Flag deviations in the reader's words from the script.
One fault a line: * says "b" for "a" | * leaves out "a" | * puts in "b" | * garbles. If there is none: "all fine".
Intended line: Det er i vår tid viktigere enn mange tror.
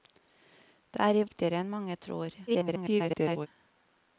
* leaves out "vår tid"
* garbles